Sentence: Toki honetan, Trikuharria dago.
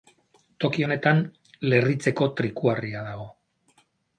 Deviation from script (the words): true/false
true